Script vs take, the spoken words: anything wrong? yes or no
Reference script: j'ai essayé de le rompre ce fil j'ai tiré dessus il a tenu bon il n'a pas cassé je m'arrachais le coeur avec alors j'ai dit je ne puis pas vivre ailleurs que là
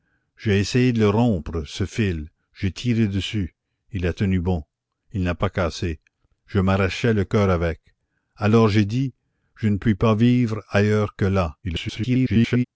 yes